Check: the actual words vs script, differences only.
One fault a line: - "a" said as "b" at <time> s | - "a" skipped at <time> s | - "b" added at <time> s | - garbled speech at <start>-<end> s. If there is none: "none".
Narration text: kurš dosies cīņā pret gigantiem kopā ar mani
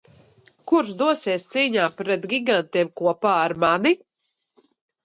none